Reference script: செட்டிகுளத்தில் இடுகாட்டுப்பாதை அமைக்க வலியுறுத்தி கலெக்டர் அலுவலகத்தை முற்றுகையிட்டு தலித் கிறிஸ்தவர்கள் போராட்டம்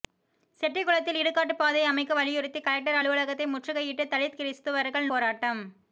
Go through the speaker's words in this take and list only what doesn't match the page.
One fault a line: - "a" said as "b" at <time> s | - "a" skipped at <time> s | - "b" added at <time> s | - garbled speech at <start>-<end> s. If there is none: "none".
none